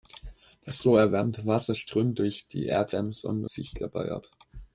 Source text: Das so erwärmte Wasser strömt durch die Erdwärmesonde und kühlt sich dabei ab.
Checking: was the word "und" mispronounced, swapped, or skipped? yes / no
yes